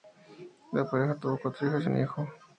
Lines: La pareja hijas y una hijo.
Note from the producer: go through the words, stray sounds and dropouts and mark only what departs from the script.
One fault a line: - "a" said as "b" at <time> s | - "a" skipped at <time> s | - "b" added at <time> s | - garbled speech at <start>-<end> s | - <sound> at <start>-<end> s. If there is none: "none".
- "tuvo cuatro" added at 1.2 s
- "una" said as "un" at 1.9 s